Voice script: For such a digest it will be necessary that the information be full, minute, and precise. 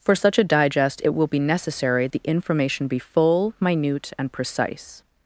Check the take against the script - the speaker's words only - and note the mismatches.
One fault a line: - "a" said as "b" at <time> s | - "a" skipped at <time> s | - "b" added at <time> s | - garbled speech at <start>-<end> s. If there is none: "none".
- "that" skipped at 2.1 s